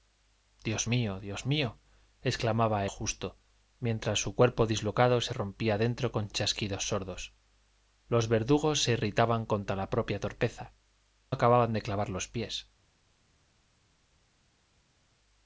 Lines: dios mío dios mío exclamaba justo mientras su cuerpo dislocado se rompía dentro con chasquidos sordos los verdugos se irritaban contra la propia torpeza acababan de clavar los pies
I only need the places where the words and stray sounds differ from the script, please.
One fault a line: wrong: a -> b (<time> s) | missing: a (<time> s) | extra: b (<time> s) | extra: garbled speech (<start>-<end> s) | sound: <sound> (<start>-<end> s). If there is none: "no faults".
no faults